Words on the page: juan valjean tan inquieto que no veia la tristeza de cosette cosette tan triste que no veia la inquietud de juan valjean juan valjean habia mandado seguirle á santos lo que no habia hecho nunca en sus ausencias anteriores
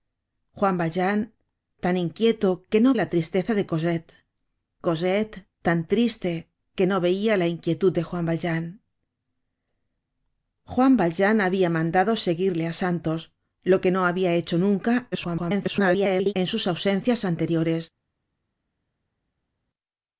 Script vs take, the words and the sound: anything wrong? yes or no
yes